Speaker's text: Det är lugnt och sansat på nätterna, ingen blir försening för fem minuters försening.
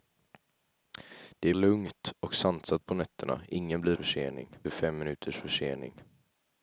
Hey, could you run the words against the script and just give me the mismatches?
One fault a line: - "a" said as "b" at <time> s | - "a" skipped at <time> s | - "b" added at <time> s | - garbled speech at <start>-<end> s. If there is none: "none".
none